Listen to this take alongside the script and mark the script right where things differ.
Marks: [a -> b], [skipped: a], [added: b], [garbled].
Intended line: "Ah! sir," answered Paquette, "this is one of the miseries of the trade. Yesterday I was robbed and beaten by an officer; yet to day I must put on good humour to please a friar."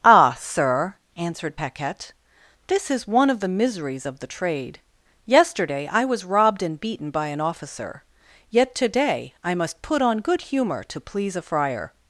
"Ah! sir," answered Paquette, "this is one of the miseries of the trade. Yesterday I was robbed and beaten by an officer; yet to day I must put on good humour to please a friar."